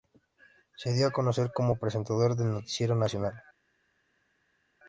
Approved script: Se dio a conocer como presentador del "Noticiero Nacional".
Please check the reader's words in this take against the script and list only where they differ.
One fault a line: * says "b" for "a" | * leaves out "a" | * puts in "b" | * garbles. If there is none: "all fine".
all fine